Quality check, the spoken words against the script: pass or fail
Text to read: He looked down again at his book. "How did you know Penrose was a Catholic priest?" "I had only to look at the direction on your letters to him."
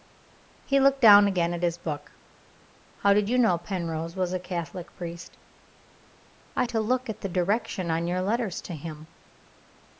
fail